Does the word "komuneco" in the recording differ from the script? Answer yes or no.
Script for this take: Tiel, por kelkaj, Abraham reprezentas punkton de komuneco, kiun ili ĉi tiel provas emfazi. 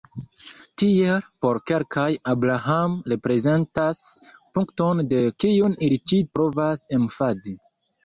yes